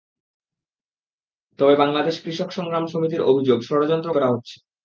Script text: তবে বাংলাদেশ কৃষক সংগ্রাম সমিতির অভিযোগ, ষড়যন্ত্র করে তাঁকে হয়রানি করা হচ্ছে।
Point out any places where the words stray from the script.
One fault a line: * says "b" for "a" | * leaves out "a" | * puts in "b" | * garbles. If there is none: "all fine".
* leaves out "করে তাঁকে হয়রানি"